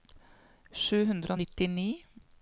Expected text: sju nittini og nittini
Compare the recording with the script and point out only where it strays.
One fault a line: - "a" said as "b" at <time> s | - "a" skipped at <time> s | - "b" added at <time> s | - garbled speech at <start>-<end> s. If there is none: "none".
- "nittini" said as "hundre" at 1.1 s